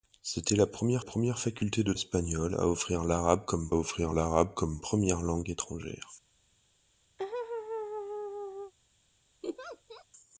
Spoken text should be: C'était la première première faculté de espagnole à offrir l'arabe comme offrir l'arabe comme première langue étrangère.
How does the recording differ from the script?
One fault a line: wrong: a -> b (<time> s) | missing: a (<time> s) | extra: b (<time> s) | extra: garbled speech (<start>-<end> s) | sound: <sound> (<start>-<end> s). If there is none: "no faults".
sound: laugh (7.2-8.7 s)
sound: laugh (9.4-10.1 s)